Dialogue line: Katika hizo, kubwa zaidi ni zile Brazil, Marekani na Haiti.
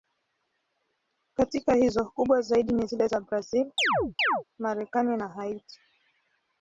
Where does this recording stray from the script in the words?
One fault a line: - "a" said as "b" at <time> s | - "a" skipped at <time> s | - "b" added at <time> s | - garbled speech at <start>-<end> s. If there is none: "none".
- "za" added at 3.1 s